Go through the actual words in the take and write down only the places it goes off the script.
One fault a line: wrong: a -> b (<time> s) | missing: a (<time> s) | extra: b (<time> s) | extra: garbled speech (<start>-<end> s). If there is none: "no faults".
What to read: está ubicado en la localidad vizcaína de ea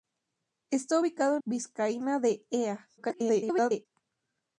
missing: la localidad (1.4 s)
extra: garbled speech (3.0-3.9 s)